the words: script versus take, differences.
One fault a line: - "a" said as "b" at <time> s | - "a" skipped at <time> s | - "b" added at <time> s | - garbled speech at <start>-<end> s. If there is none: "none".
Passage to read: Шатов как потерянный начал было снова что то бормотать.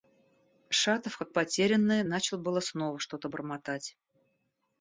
none